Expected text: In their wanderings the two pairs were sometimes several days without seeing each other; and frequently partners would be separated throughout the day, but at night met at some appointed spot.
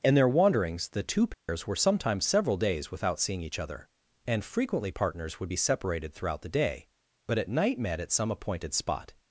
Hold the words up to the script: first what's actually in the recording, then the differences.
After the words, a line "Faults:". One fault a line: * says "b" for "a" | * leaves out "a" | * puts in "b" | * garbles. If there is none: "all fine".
In their wanderings the two pairs were sometimes several days without seeing each other; and frequently partners would be separated throughout the day, but at night met at some appointed spot.
Faults:
all fine